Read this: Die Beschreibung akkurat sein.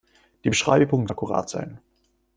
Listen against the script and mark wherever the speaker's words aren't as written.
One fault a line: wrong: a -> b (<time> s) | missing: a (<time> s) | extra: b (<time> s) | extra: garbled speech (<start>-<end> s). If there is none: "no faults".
no faults